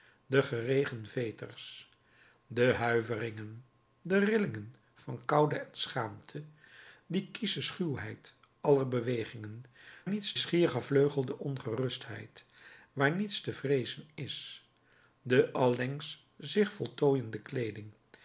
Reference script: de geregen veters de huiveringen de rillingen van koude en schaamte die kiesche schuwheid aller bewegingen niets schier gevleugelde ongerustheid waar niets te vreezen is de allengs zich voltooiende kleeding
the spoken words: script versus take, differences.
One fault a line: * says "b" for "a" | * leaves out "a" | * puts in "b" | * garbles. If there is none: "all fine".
all fine